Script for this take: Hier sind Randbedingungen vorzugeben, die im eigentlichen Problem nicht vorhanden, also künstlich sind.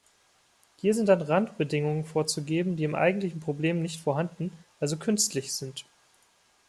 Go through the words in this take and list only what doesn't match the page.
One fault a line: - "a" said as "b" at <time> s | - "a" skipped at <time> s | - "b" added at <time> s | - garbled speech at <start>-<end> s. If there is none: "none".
- "dann" added at 1.1 s